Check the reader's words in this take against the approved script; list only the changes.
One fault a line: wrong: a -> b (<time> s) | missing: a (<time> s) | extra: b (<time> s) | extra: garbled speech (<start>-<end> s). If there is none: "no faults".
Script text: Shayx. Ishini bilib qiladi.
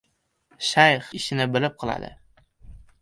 no faults